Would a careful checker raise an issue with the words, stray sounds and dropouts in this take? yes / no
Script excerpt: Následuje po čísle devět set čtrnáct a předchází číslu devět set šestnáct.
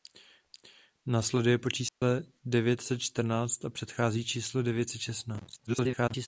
yes